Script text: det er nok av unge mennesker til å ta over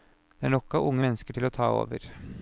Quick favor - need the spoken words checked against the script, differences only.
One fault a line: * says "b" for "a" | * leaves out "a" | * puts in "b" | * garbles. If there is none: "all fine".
all fine